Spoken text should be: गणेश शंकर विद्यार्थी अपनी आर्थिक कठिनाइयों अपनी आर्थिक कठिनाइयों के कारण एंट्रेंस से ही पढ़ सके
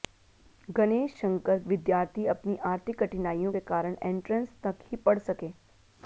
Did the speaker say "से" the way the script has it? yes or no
no